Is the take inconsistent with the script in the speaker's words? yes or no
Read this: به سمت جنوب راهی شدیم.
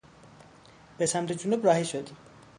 no